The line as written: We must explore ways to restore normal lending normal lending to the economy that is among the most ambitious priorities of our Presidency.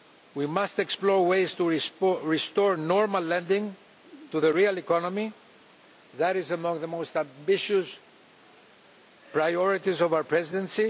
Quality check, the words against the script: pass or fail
fail